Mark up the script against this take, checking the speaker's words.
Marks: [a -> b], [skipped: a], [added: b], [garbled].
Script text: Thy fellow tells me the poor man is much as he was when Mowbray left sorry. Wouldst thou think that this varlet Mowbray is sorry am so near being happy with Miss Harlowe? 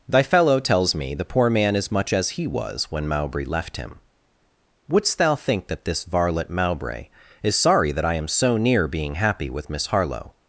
Thy fellow tells me the poor man is much as he was when Mowbray left [sorry. -> him] Wouldst thou think that this varlet Mowbray is sorry [added: that I] am so near being happy with Miss Harlowe?